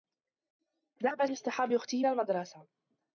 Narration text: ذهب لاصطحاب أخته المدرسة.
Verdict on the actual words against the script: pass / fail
pass